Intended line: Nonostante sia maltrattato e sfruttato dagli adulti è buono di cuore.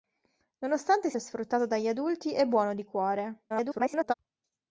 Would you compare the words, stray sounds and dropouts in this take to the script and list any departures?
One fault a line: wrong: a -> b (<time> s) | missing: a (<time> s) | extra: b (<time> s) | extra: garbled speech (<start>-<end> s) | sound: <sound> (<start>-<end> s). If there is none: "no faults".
missing: sia maltrattato (1.1 s)
extra: garbled speech (3.5-4.1 s)